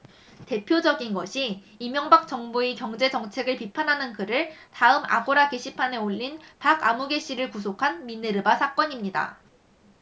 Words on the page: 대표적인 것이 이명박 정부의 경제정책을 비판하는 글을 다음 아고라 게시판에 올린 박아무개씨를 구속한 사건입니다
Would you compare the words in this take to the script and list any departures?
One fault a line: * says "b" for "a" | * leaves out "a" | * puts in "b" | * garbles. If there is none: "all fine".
* puts in "미네르바"